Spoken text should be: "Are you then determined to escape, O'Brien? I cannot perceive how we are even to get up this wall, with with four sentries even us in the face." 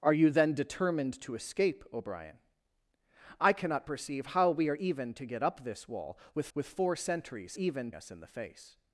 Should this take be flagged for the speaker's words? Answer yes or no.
no